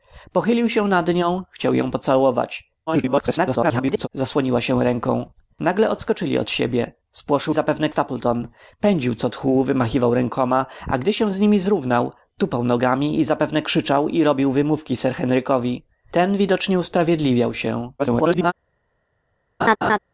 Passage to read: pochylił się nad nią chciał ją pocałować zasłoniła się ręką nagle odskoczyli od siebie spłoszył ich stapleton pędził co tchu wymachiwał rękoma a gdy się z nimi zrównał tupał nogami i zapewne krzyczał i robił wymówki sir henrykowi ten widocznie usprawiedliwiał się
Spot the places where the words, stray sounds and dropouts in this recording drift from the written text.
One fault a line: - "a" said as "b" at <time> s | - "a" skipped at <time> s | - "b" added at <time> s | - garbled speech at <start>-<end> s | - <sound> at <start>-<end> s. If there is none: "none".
- garbled speech at 2.9-4.1 s
- "ich" said as "zapewne" at 7.5 s
- garbled speech at 18.0-18.5 s
- laugh at 19.6-20.0 s